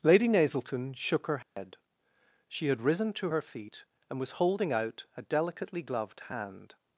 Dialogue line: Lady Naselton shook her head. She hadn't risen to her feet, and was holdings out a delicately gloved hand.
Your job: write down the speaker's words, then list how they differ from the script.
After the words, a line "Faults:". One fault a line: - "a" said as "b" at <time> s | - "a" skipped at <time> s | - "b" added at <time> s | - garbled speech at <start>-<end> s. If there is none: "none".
Lady Naselton shook her head. She had risen to her feet, and was holding out a delicately gloved hand.
Faults:
- "hadn't" said as "had" at 2.7 s
- "holdings" said as "holding" at 4.3 s